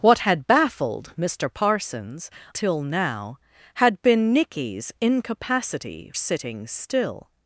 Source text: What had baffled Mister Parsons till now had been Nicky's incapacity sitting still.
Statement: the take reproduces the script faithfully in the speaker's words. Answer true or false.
true